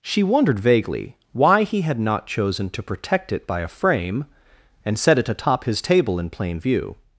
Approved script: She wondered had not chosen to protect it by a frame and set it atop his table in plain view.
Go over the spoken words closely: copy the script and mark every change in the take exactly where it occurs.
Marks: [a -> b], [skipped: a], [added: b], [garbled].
She wondered [added: vaguely why he] had not chosen to protect it by a frame and set it atop his table in plain view.